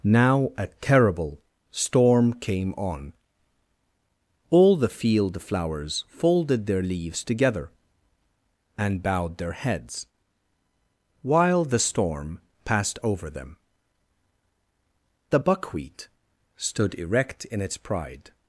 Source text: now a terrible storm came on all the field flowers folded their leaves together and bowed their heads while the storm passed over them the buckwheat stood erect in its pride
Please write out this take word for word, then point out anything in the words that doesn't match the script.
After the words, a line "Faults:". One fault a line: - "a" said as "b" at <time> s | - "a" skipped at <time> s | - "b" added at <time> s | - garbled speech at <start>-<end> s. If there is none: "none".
now a terrible storm came on all the field flowers folded their leaves together and bowed their heads while the storm passed over them the buckwheat stood erect in its pride
Faults:
none